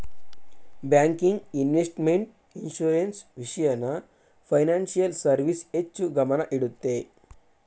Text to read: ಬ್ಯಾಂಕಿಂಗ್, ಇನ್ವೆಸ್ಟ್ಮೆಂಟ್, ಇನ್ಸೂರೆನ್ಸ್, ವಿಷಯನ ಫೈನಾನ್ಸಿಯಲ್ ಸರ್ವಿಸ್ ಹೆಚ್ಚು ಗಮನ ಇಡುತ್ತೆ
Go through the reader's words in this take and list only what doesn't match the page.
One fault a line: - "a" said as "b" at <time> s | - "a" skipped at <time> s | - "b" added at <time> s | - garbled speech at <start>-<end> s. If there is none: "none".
none